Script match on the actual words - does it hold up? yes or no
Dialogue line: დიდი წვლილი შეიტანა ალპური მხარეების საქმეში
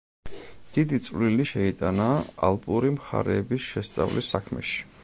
no